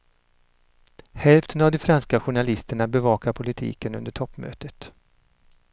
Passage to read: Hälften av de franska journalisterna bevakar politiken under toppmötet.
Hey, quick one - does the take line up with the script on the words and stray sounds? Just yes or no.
yes